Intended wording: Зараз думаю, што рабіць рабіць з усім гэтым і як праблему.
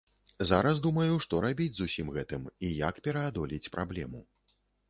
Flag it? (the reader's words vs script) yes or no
yes